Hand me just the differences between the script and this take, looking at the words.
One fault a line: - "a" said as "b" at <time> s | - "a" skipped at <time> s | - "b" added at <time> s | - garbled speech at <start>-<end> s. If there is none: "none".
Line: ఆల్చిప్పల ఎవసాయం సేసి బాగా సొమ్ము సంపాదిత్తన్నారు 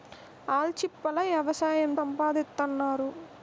- "సేసి బాగా సొమ్ము" skipped at 1.9 s